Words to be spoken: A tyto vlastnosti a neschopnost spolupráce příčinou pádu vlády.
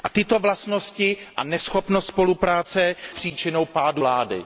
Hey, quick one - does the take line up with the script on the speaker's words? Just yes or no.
yes